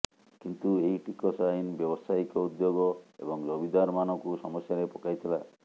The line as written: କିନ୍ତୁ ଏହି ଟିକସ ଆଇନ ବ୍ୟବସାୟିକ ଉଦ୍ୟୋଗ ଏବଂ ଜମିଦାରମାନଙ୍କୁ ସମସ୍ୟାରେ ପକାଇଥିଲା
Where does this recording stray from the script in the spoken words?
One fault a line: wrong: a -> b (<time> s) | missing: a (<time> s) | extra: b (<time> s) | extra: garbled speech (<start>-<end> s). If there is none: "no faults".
no faults